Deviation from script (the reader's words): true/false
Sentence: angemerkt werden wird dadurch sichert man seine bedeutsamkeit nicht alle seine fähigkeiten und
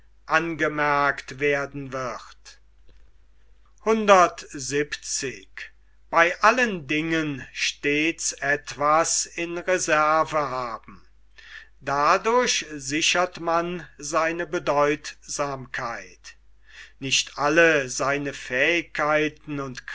false